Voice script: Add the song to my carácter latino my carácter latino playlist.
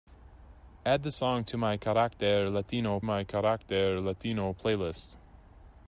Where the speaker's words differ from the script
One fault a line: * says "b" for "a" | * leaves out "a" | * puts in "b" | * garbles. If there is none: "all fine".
all fine